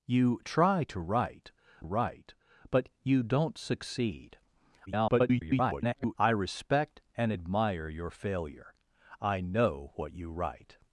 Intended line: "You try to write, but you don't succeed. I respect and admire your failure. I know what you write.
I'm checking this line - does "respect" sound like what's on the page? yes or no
yes